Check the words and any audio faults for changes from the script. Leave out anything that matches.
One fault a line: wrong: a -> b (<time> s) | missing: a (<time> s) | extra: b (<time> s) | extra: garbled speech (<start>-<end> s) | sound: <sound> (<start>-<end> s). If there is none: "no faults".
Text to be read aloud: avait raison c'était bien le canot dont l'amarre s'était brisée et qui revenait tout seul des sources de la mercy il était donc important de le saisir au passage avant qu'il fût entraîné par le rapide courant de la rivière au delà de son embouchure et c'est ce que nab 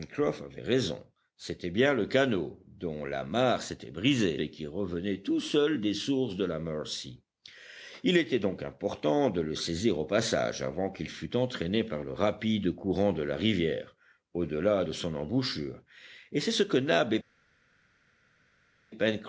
no faults